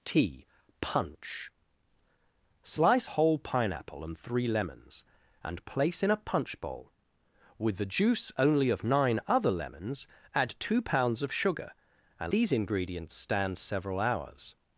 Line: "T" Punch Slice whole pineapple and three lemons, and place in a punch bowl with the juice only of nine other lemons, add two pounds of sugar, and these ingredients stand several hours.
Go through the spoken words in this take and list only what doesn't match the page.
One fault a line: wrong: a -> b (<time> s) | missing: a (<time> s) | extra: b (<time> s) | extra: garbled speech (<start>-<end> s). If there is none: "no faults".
no faults